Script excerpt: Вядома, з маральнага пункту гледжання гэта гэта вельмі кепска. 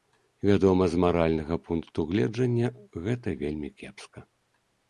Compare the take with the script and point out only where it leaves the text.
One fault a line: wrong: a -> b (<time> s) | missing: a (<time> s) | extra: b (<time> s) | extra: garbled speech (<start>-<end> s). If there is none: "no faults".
missing: гэта (3.4 s)